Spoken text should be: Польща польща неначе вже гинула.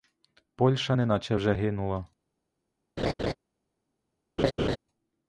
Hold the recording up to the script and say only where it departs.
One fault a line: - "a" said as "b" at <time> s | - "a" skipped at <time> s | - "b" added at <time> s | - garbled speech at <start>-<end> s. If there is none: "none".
- "польща" skipped at 0.9 s